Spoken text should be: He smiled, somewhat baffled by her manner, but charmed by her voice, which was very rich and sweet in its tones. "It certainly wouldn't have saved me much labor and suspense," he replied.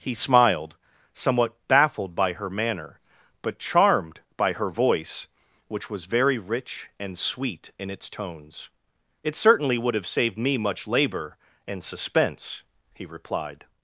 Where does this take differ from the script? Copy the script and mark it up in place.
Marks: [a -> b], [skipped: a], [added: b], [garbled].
He smiled, somewhat baffled by her manner, but charmed by her voice, which was very rich and sweet in its tones. "It certainly [wouldn't -> would] have saved me much labor and suspense," he replied.